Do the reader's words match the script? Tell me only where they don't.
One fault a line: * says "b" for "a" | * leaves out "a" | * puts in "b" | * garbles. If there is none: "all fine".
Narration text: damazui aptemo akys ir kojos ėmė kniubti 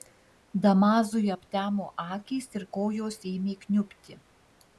all fine